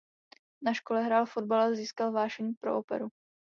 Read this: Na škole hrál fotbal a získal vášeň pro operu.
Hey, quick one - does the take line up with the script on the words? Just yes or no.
yes